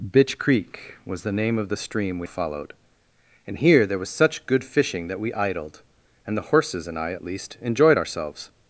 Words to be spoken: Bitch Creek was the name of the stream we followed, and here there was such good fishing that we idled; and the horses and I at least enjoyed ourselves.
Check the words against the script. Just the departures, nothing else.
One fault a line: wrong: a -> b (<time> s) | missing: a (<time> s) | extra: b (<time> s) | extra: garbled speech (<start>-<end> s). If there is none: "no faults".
no faults